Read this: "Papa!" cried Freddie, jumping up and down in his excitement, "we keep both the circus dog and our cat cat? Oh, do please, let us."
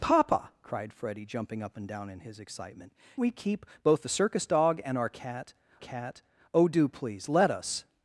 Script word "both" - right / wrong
right